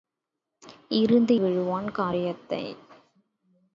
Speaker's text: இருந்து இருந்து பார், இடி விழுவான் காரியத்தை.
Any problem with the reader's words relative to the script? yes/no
yes